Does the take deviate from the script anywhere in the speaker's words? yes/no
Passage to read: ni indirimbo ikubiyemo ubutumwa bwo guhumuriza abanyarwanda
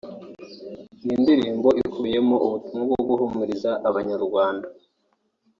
no